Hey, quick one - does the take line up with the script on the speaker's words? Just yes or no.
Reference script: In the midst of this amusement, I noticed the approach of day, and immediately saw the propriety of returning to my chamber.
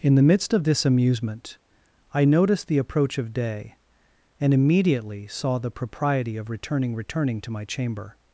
no